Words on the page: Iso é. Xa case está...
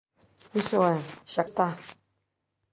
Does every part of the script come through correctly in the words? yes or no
no